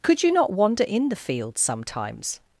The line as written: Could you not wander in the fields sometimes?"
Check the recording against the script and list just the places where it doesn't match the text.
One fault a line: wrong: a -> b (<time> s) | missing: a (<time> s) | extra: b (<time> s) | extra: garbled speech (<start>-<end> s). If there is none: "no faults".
no faults